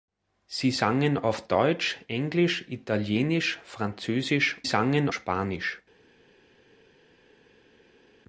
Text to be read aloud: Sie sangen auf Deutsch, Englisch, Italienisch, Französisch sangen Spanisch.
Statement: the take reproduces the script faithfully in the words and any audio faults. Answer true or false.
true